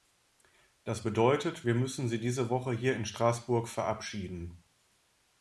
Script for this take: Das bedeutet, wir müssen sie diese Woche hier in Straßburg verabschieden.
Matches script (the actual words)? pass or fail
pass